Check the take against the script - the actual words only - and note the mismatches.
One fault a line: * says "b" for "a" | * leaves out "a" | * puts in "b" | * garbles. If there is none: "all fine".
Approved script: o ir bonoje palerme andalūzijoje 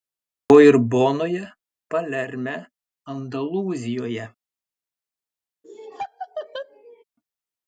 all fine